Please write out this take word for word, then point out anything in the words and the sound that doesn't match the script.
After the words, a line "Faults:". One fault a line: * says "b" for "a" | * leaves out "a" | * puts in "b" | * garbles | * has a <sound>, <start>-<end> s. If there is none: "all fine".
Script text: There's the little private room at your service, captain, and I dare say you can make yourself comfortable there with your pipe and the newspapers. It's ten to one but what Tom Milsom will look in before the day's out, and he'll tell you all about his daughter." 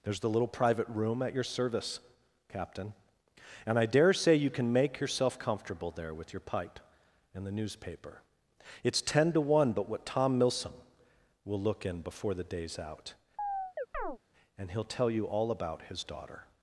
There's the little private room at your service, captain, and I dare say you can make yourself comfortable there with your pipe and the newspaper. It's ten to one but what Tom Milsom will look in before the day's out, and he'll tell you all about his daughter."
Faults:
* says "newspaper" for "newspapers"
* has a chirp, 13.4-14.2 s